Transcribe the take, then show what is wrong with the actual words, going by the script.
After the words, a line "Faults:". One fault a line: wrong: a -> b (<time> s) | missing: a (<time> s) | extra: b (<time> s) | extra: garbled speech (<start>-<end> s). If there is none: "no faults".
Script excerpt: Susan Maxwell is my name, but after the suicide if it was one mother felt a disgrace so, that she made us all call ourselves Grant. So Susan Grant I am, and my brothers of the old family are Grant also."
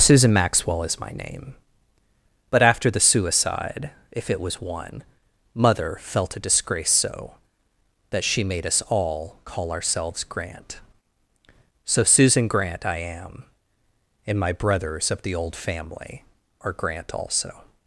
Susan Maxwell is my name, but after the suicide if it was one mother felt a disgrace so, that she made us all call ourselves Grant. So Susan Grant I am, and my brothers of the old family are Grant also."
Faults:
no faults